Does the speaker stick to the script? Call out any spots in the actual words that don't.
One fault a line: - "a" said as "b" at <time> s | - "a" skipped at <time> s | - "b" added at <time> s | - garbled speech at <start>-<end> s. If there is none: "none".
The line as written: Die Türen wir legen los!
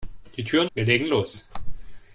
none